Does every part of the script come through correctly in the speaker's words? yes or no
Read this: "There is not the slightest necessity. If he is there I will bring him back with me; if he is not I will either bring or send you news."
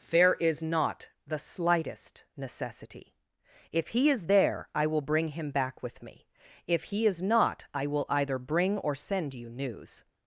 yes